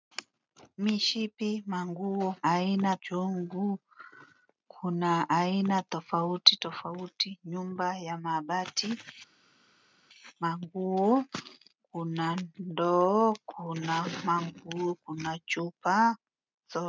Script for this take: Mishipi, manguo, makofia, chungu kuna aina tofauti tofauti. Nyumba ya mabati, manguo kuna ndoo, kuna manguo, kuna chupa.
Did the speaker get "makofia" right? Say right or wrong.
wrong